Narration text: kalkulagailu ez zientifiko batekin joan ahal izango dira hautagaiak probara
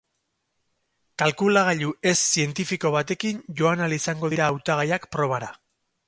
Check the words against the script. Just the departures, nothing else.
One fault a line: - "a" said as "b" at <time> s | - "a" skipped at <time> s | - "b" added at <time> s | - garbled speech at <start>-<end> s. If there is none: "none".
none